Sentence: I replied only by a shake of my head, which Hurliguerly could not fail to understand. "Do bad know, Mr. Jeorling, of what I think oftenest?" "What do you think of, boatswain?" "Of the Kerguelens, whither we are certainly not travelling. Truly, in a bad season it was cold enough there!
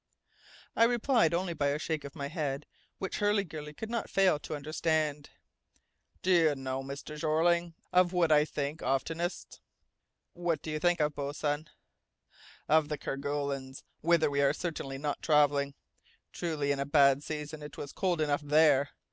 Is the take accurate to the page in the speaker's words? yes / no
no